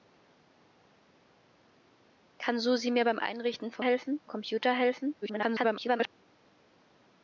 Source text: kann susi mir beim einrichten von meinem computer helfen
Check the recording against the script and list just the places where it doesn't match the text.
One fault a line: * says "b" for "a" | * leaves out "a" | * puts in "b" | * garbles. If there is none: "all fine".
* says "helfen" for "meinem"
* garbles